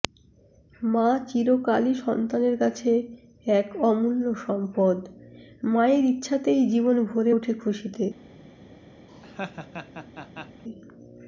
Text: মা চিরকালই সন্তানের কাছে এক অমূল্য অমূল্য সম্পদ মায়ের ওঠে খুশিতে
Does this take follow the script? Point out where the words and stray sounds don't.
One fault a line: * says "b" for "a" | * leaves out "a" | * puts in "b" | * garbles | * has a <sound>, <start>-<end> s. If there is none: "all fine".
* leaves out "অমূল্য"
* puts in "ইচ্ছাতেই জীবন ভরে"
* has a laugh, 9.1-10.6 s